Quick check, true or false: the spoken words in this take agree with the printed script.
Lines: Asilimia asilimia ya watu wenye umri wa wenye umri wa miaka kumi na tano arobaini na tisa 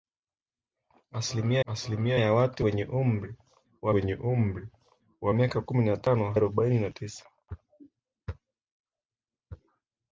true